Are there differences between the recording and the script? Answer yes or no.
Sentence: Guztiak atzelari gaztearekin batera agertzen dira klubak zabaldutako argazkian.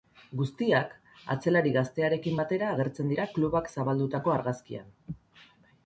no